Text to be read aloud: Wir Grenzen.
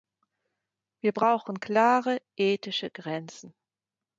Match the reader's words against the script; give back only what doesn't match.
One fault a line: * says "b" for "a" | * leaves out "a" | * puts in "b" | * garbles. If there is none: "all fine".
* puts in "brauchen klare ethische"